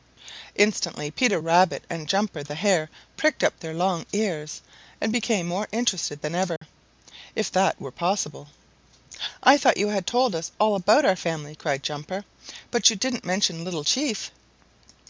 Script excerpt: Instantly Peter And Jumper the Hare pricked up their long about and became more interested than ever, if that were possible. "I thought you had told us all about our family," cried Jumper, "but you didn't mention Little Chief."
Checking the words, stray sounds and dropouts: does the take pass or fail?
fail